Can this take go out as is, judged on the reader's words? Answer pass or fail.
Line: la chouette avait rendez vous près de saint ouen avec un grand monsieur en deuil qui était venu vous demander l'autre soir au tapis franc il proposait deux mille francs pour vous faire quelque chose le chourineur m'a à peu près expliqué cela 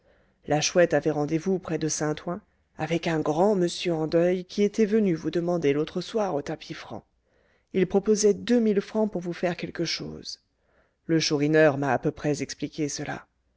pass